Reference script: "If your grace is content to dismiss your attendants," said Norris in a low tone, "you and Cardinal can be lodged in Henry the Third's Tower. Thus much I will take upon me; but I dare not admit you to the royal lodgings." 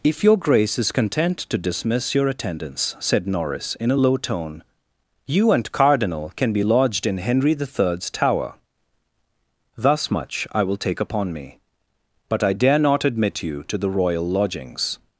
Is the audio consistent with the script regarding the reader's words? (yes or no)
yes